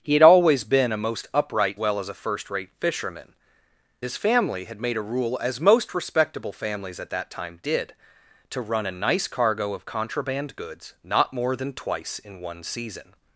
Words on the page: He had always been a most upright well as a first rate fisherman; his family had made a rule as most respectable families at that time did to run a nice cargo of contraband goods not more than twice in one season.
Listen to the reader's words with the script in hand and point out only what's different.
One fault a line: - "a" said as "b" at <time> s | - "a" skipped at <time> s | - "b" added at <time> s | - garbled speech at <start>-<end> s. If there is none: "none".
none